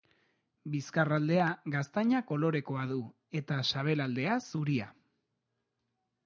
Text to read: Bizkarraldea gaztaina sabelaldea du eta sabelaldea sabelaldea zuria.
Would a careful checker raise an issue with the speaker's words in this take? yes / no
yes